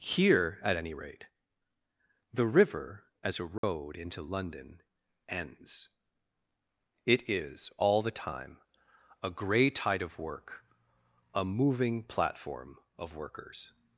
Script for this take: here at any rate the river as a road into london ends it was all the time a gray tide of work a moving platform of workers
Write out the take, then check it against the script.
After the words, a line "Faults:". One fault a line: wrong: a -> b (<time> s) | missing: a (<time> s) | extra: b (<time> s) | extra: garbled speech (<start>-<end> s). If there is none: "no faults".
here at any rate the river as a road into london ends it is all the time a gray tide of work a moving platform of workers
Faults:
wrong: was -> is (7.3 s)